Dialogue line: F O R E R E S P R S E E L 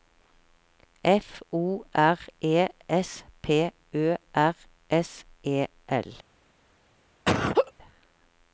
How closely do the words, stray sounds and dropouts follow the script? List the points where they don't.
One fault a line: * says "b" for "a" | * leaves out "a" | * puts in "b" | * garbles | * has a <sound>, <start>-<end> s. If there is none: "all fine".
* leaves out "R E"
* puts in "Ø"
* leaves out "E"
* has a laugh, 7.2-7.7 s